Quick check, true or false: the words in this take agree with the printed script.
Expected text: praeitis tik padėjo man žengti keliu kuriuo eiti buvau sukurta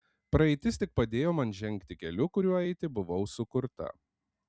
true